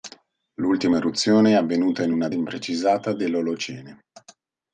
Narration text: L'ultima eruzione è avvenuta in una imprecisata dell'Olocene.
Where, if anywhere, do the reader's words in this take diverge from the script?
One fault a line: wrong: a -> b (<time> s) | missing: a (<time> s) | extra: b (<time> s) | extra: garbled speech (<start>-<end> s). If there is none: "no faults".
no faults